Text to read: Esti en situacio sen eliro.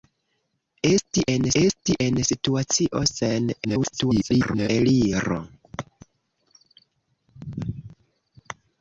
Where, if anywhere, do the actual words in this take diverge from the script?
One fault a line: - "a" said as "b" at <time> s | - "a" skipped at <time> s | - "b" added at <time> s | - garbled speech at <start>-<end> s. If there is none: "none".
- "esti en" added at 1.6 s
- garbled speech at 3.6-4.7 s